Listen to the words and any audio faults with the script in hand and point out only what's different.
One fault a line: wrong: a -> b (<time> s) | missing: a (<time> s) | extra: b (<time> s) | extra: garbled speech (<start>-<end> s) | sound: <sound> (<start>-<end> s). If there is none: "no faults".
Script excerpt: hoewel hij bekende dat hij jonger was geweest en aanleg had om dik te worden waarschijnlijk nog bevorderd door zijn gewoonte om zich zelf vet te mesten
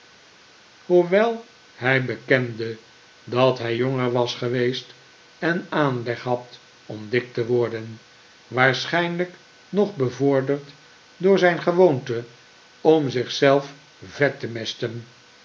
no faults